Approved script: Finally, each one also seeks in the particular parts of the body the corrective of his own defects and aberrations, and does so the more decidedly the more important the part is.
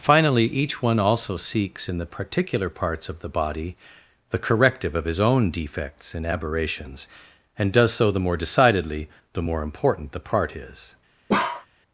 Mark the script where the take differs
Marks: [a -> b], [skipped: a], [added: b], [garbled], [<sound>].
Finally, each one also seeks in the particular parts of the body the corrective of his own defects and aberrations, and does so the more decidedly the more important the part is. [bark]